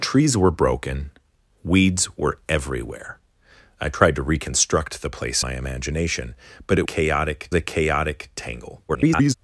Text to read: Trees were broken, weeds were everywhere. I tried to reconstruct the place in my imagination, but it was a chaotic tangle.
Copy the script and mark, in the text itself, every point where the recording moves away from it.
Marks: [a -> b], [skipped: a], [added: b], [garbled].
Trees were broken, weeds were everywhere. I tried to reconstruct the place [skipped: in] my imagination, but it [was -> chaotic] a chaotic tangle. [garbled]